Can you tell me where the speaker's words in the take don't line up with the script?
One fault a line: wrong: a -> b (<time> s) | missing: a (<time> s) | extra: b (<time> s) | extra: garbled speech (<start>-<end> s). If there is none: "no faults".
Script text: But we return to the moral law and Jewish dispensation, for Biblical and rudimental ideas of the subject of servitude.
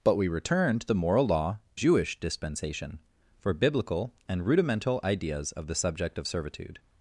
missing: and (1.6 s)